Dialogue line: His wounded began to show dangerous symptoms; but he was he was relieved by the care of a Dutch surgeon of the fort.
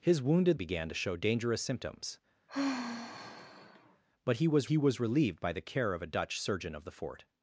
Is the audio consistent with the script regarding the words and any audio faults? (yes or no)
no